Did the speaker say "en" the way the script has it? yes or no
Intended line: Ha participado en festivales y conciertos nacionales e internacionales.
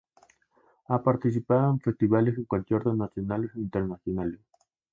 yes